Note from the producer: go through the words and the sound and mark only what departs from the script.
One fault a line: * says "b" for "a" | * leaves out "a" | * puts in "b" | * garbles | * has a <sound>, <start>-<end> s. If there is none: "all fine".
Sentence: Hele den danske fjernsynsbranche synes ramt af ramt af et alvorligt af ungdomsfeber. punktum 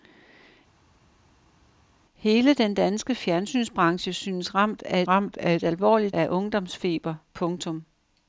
all fine